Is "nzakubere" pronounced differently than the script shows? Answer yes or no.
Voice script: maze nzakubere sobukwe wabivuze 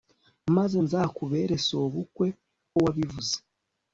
no